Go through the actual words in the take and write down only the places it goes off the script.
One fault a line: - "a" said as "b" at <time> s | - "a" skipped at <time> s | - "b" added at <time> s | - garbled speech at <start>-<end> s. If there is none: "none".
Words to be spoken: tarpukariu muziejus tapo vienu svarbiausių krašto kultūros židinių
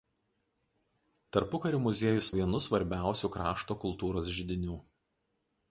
- "tapo" skipped at 2.3 s